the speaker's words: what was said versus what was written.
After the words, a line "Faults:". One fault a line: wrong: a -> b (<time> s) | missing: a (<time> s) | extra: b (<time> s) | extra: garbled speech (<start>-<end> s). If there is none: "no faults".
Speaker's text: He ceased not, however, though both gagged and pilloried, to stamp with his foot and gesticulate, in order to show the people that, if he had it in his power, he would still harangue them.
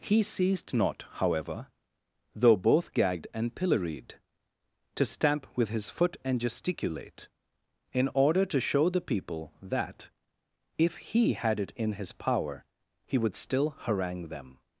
He ceased not, however, though both gagged and pilloried, to stamp with his foot and gesticulate, in order to show the people that, if he had it in his power, he would still harangue them.
Faults:
no faults